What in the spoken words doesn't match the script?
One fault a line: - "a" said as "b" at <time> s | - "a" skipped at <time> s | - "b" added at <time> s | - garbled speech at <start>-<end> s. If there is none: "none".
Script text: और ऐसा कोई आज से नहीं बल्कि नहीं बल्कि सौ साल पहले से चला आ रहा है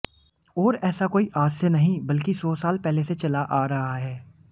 - "नहीं बल्कि" skipped at 2.3 s